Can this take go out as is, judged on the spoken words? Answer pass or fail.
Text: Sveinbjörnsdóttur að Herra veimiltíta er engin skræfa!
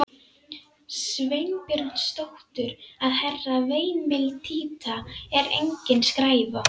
pass